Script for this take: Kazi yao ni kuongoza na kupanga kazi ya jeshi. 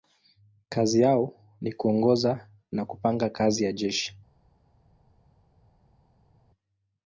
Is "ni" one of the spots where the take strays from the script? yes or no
no